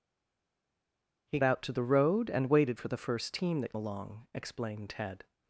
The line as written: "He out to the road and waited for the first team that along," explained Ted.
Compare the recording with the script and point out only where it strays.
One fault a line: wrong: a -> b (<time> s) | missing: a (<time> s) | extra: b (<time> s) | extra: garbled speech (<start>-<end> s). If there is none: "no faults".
no faults